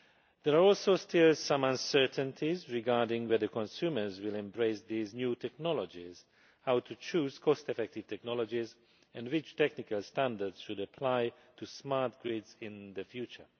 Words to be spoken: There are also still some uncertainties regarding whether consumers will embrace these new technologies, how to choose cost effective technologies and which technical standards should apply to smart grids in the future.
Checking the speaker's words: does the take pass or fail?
pass